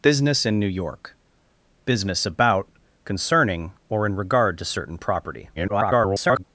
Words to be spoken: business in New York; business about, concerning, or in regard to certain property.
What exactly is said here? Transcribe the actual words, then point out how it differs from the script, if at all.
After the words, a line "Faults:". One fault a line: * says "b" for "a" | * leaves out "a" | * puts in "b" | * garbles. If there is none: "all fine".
business in New York; business about, concerning, or in regard to certain property. [garbled]
Faults:
* garbles